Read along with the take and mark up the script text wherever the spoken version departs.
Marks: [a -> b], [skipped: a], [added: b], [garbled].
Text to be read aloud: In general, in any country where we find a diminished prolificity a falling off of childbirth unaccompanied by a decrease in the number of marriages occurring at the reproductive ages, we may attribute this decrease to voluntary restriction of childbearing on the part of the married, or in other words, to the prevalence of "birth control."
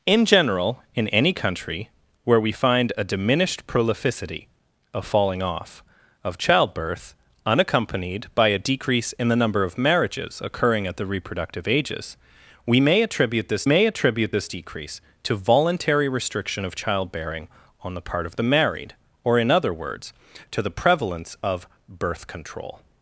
In general, in any country where we find a diminished prolificity a falling off of childbirth unaccompanied by a decrease in the number of marriages occurring at the reproductive ages, we may attribute this [added: may attribute this] decrease to voluntary restriction of childbearing on the part of the married, or in other words, to the prevalence of "birth control."